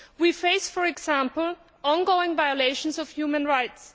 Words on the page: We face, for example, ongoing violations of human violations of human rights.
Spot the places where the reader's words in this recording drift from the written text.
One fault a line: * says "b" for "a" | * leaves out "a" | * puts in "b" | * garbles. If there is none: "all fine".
* leaves out "violations of human"